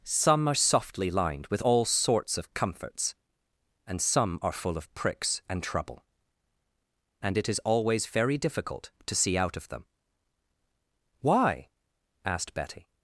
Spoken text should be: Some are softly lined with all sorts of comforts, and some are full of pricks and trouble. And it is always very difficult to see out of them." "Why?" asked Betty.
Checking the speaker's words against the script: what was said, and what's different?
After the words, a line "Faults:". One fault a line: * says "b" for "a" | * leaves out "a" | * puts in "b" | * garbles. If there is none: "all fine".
Some are softly lined with all sorts of comforts, and some are full of pricks and trouble. And it is always very difficult to see out of them." "Why?" asked Betty.
Faults:
all fine